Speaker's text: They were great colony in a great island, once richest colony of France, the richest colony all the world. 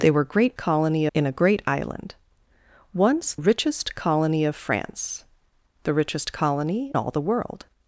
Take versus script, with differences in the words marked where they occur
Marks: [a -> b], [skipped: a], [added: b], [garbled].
They were great colony in a great island, once richest colony of France, the richest colony all the world.